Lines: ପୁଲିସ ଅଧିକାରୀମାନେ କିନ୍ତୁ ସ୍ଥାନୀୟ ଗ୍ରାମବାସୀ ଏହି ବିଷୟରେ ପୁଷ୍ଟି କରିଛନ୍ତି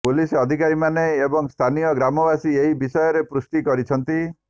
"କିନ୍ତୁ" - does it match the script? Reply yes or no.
no